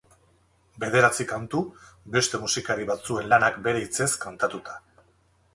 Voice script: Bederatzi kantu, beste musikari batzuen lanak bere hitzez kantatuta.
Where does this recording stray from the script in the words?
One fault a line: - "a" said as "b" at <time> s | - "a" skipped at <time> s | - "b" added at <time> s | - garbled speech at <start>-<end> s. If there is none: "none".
none